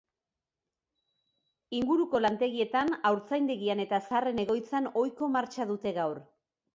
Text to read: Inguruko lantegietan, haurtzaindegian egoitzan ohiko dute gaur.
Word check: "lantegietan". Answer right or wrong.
right